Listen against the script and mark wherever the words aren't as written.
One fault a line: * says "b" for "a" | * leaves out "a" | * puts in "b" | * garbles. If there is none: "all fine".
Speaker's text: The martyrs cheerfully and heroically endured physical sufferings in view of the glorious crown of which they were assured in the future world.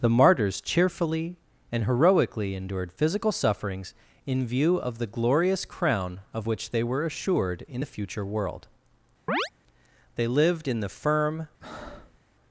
* puts in "They lived in the firm"